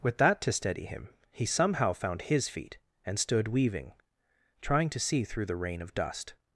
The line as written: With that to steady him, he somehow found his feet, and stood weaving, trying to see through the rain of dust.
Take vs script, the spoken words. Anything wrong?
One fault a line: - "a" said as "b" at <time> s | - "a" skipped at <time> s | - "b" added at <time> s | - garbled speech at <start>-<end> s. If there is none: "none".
none